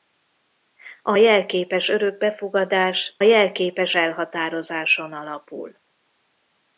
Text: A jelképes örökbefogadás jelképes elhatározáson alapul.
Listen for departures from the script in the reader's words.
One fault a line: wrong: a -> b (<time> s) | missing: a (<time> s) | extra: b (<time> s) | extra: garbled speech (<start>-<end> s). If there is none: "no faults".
no faults